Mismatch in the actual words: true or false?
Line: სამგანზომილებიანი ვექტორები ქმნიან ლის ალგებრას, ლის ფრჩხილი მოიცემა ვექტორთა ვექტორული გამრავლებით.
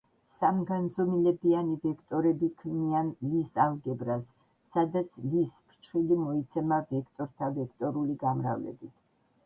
true